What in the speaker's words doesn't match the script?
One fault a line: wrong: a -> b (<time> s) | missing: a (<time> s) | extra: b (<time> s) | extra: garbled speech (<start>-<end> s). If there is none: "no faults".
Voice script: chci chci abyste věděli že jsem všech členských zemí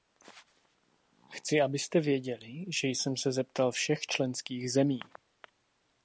missing: chci (1.6 s)
extra: se zeptal (3.2 s)